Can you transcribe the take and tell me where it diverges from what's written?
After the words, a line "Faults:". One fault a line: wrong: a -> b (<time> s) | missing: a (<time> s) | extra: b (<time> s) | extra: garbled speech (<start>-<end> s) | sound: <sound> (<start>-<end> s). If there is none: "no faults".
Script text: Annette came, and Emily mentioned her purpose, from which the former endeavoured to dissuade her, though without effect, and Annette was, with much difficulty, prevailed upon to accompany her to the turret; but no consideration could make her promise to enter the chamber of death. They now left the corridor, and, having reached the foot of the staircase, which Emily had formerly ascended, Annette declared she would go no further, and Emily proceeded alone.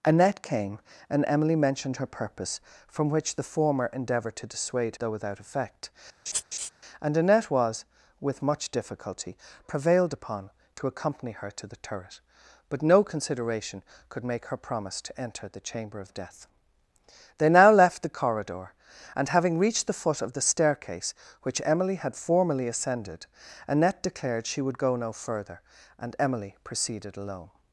Annette came, and Emily mentioned her purpose, from which the former endeavoured to dissuade though without effect, and Annette was, with much difficulty, prevailed upon to accompany her to the turret; but no consideration could make her promise to enter the chamber of death. They now left the corridor, and, having reached the foot of the staircase, which Emily had formerly ascended, Annette declared she would go no further, and Emily proceeded alone.
Faults:
missing: her (5.0 s)
sound: laugh (6.3-6.7 s)